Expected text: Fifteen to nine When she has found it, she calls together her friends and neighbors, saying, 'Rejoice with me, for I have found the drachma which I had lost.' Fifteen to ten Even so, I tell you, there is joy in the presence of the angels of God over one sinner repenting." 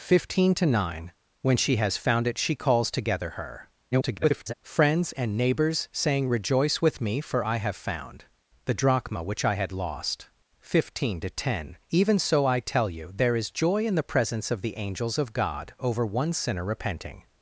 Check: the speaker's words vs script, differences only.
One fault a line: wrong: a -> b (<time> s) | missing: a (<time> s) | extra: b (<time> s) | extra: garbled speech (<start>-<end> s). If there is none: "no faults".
extra: garbled speech (3.9-4.5 s)